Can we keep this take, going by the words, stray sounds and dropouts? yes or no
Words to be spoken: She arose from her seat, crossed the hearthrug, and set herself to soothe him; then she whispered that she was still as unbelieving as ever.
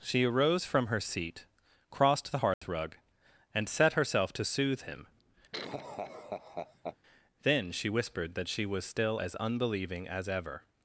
no